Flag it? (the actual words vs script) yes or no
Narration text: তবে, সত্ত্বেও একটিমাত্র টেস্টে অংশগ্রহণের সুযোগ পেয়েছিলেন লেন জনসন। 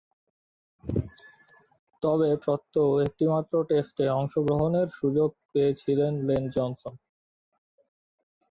no